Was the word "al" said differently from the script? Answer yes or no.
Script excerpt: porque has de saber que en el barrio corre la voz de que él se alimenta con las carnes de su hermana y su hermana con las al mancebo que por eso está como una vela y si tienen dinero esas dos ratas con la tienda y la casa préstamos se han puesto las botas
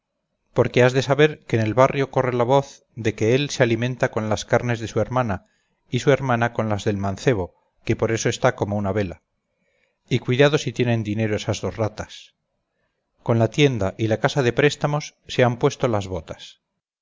yes